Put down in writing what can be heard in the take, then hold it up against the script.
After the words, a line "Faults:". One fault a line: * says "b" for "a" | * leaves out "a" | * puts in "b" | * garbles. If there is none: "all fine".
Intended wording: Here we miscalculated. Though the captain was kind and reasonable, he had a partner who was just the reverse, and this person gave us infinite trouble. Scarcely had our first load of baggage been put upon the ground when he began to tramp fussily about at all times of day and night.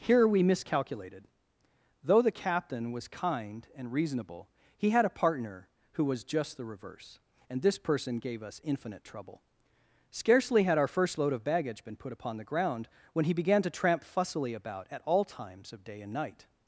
Here we miscalculated. Though the captain was kind and reasonable, he had a partner who was just the reverse, and this person gave us infinite trouble. Scarcely had our first load of baggage been put upon the ground when he began to tramp fussily about at all times of day and night.
Faults:
all fine